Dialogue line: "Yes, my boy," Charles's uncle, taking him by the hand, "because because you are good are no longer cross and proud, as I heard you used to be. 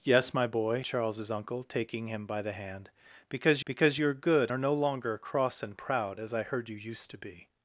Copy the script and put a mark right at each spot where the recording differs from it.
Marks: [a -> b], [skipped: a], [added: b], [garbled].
"Yes, my boy," Charles's uncle, taking him by the hand, "because because you are good are no longer cross and proud, as I heard you used to be.